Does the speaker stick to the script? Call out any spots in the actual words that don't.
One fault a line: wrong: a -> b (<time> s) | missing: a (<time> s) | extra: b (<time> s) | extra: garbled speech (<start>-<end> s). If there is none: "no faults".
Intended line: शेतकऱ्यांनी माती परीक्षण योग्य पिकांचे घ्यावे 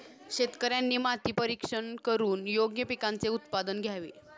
extra: करून (2.0 s)
extra: उत्पादन (3.3 s)